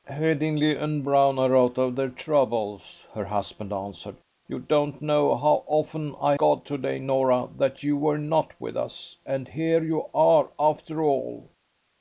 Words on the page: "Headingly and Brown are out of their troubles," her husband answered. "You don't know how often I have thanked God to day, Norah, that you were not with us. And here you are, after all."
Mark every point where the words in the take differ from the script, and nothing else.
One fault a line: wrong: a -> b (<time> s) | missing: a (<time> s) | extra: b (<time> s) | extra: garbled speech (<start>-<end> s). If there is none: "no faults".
missing: have thanked (6.4 s)